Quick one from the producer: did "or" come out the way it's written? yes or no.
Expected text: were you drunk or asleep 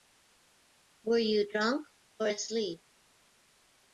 yes